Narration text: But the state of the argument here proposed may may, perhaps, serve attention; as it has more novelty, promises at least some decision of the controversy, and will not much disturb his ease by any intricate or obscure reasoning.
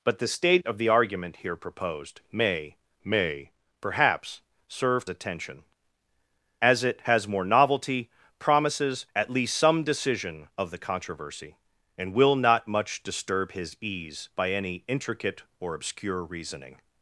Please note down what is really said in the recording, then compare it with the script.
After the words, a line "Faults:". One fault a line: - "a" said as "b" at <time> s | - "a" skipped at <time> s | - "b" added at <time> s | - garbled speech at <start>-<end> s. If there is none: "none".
But the state of the argument here proposed may may, perhaps, serve attention; as it has more novelty, promises at least some decision of the controversy, and will not much disturb his ease by any intricate or obscure reasoning.
Faults:
none